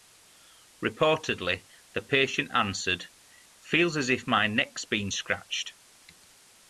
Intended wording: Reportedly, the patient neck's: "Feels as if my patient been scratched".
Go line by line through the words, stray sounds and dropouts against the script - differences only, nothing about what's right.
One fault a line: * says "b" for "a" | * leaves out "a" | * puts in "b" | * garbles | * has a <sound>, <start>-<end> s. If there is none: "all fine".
* says "answered" for "neck's"
* says "neck's" for "patient"